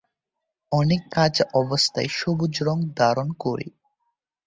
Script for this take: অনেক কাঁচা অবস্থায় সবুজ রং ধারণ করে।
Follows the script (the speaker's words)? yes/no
yes